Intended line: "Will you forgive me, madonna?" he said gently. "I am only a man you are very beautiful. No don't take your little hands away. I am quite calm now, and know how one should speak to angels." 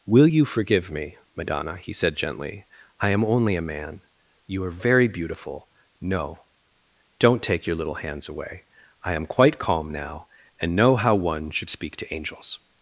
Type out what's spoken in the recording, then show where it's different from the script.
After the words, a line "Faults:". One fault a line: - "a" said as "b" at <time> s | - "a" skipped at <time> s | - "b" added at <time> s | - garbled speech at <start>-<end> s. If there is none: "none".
"Will you forgive me, madonna?" he said gently. "I am only a man you are very beautiful. No don't take your little hands away. I am quite calm now, and know how one should speak to angels."
Faults:
none